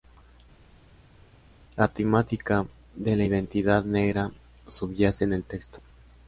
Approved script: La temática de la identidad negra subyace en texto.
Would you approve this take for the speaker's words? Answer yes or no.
no